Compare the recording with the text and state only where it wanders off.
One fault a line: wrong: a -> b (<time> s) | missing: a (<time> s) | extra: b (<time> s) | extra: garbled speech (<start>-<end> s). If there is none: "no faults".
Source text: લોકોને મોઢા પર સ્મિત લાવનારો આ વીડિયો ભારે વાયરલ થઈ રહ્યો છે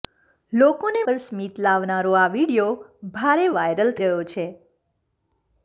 missing: મોઢા (1.0 s)
missing: થઈ (4.0 s)